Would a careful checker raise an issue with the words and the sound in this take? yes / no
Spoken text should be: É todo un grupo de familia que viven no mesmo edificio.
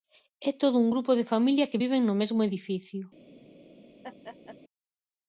yes